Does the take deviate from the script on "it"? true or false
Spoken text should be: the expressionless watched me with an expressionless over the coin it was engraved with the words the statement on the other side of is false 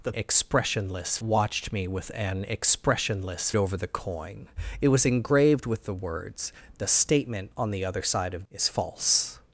false